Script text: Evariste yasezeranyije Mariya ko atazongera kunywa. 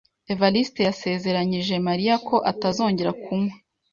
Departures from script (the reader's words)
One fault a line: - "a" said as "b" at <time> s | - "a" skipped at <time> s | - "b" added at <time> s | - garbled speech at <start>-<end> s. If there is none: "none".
none